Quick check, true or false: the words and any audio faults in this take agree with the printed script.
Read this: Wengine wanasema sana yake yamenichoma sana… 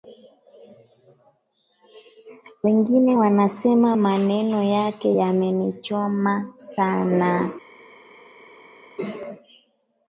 false